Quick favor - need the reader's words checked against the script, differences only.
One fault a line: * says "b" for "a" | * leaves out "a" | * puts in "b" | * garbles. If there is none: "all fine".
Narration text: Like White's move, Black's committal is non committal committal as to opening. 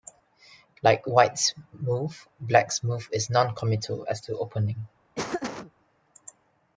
* says "move" for "committal"
* leaves out "committal"